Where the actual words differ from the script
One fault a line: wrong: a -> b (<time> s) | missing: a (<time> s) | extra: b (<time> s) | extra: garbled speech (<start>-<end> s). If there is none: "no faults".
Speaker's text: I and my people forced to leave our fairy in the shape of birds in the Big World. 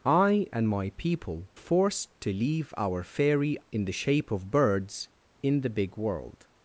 no faults